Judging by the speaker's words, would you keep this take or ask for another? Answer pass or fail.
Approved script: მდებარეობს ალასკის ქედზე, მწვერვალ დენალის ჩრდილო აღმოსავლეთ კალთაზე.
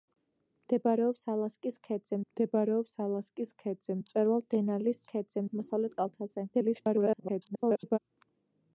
fail